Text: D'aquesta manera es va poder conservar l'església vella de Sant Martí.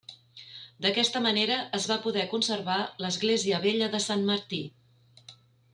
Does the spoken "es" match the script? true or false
true